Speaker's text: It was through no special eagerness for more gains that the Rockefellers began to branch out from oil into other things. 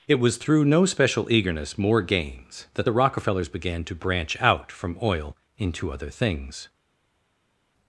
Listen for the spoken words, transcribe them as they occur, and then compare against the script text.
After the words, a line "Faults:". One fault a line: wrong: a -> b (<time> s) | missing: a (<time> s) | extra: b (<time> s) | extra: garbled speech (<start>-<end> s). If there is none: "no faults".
It was through no special eagerness more gains that the Rockefellers began to branch out from oil into other things.
Faults:
missing: for (1.8 s)